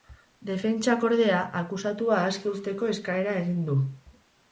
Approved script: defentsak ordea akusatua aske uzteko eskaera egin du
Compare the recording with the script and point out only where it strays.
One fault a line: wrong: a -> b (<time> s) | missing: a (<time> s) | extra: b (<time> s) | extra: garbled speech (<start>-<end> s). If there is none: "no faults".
no faults